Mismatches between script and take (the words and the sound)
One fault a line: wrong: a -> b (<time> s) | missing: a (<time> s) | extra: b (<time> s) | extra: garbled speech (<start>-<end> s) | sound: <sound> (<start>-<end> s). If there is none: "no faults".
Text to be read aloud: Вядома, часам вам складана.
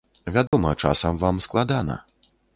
sound: dropout (0.5-0.5 s)